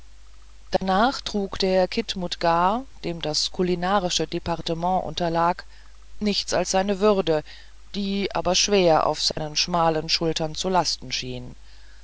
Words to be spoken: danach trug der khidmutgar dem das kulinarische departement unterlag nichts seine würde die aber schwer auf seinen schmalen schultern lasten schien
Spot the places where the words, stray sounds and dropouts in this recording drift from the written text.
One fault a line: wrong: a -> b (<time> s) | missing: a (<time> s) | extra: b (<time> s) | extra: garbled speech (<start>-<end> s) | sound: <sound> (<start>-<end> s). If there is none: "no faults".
sound: dropout (0.8-0.8 s)
extra: als (6.5 s)
sound: dropout (9.3-9.4 s)
extra: zu (10.6 s)